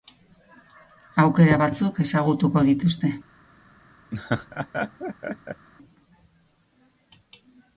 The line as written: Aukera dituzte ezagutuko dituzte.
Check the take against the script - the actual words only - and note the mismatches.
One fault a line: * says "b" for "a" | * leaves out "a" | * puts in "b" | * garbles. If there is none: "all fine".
* says "batzuk" for "dituzte"